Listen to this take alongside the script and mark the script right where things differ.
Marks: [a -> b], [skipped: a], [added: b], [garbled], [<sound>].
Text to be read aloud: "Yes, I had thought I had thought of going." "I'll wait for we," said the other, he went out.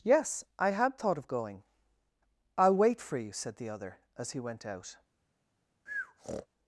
"Yes, I had thought [skipped: I had thought] of going." "I'll wait for [we," -> you] said the other, [added: as] he went out. [breath]